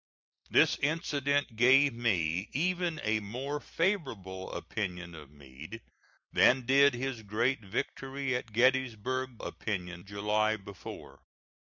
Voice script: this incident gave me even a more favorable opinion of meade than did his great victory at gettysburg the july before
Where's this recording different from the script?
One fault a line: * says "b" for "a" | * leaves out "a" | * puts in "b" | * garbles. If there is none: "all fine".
* says "opinion" for "the"